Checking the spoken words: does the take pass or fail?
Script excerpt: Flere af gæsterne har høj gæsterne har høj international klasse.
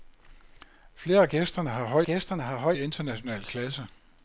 pass